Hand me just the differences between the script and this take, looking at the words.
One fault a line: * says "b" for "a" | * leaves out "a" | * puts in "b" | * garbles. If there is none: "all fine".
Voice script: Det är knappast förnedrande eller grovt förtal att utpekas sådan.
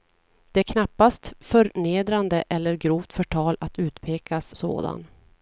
all fine